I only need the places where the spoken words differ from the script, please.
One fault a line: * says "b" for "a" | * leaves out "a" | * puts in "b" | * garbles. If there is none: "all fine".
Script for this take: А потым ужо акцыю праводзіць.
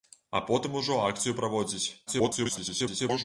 * garbles